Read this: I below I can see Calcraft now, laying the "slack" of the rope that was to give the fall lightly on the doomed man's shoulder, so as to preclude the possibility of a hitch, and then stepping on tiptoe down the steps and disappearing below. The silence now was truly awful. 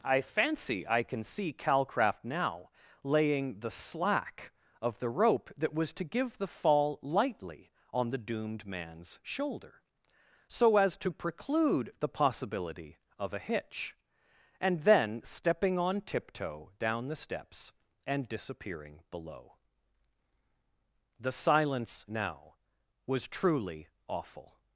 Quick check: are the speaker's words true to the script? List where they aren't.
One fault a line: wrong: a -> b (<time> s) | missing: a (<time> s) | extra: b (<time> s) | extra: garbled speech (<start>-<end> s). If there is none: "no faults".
wrong: below -> fancy (0.2 s)